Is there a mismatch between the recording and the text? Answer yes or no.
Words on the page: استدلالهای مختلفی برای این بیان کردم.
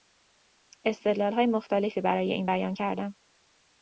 no